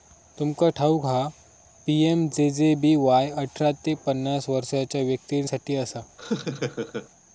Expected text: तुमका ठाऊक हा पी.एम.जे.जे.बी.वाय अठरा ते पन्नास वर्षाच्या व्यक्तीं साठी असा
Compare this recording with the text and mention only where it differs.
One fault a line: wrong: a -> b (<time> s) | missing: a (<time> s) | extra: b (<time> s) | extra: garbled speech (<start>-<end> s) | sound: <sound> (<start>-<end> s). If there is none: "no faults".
sound: laugh (6.2-7.1 s)